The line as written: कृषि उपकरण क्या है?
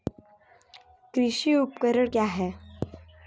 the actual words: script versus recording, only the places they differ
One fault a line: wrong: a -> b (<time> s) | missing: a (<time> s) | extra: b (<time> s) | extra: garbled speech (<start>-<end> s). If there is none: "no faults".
no faults